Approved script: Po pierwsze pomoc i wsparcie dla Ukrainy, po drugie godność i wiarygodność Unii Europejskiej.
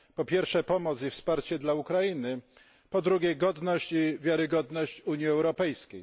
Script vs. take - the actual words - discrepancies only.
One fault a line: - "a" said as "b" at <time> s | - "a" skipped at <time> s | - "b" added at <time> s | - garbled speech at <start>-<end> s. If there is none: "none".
none